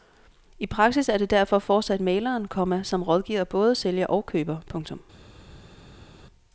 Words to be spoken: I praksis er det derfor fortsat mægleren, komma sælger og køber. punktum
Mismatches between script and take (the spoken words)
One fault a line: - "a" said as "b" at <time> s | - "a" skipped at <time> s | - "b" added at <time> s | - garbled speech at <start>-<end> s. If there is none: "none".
- "som rådgiver både" added at 2.8 s